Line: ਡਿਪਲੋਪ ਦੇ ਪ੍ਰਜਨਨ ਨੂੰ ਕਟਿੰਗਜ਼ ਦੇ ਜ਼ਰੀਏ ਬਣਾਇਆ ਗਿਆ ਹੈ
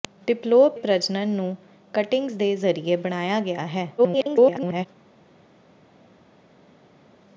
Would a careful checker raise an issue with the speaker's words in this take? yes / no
yes